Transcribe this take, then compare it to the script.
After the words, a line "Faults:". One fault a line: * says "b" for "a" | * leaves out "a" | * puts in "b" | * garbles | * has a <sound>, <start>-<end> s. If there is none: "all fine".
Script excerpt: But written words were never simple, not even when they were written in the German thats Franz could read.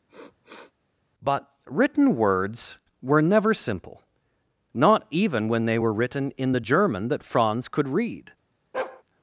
But written words were never simple, not even when they were written in the German that Franz could read.
Faults:
* has a sniff, 0.1-0.7 s
* says "that" for "thats"
* has a bark, 8.7-9.0 s